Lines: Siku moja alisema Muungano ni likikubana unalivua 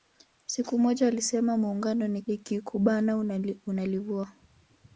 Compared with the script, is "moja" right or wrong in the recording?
right